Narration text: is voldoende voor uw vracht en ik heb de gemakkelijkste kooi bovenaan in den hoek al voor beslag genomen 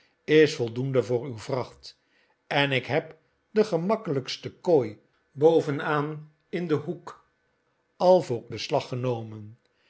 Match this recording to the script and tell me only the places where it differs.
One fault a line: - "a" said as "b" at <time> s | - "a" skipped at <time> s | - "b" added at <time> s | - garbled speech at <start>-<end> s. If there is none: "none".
none